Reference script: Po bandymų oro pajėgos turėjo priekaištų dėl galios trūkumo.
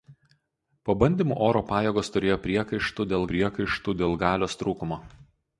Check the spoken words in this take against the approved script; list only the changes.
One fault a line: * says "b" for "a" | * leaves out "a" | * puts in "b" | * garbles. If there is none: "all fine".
* puts in "priekaištų dėl"